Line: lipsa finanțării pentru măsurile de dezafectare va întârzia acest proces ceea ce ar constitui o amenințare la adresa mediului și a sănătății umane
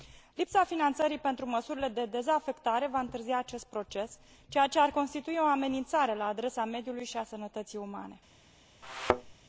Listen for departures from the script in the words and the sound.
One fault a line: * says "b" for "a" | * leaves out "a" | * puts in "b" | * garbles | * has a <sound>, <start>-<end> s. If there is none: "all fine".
* has a thud, 8.8-9.3 s